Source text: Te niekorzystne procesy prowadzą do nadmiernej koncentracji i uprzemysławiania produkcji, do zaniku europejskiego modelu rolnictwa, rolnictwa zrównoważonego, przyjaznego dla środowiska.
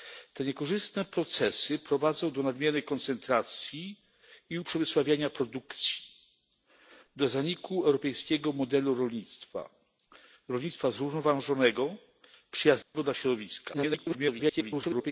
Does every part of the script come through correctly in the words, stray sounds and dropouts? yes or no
no